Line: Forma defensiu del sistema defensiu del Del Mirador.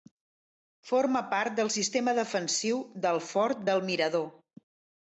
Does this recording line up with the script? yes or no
no